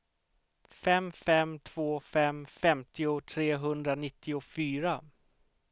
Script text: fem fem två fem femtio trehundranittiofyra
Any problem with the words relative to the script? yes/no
no